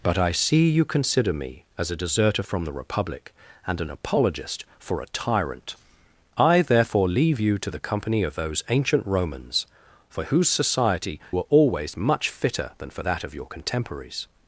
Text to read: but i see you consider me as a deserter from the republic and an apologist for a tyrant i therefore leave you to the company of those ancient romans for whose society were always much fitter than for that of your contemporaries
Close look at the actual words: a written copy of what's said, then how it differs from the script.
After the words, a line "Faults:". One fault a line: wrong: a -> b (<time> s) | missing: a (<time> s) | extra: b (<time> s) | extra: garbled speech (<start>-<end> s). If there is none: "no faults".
but i see you consider me as a deserter from the republic and an apologist for a tyrant i therefore leave you to the company of those ancient romans for whose society were always much fitter than for that of your contemporaries
Faults:
no faults